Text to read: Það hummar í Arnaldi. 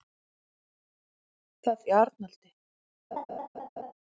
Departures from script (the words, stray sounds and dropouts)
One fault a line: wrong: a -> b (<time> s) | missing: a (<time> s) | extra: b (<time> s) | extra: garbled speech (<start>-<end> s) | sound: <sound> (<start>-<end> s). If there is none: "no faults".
missing: hummar (1.9 s)
sound: laugh (3.1-3.9 s)